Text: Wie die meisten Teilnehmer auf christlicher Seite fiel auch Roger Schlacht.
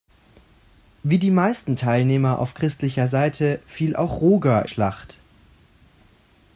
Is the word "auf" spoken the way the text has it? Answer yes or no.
yes